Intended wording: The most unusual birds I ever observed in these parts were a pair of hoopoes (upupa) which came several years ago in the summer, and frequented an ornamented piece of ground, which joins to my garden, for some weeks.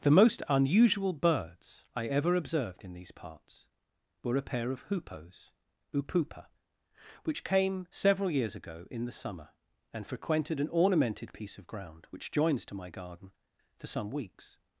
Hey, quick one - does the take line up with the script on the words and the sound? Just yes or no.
yes